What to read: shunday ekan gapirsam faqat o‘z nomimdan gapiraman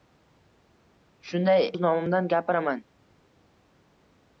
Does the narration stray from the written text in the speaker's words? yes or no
yes